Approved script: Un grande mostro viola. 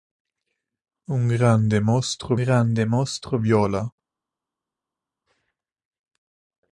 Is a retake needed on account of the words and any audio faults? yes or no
yes